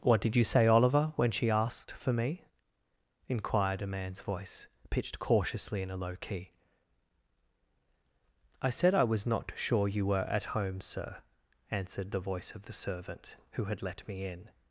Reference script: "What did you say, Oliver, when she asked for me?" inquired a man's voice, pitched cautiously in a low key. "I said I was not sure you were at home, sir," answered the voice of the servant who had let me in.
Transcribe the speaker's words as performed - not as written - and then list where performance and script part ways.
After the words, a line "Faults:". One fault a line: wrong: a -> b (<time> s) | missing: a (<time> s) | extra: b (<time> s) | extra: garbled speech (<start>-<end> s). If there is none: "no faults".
"What did you say, Oliver, when she asked for me?" inquired a man's voice, pitched cautiously in a low key. "I said I was not sure you were at home, sir," answered the voice of the servant who had let me in.
Faults:
no faults